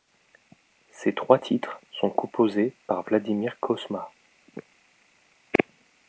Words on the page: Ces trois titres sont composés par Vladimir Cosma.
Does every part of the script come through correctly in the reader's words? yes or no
yes